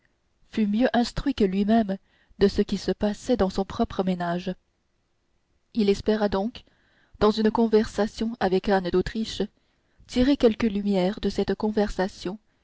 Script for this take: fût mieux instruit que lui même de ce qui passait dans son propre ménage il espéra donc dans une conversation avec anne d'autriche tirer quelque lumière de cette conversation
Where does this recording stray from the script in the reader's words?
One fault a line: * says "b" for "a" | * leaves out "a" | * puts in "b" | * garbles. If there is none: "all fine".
* puts in "se"